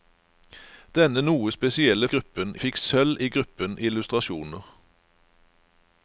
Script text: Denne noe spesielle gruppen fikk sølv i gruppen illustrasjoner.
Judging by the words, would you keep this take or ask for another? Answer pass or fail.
pass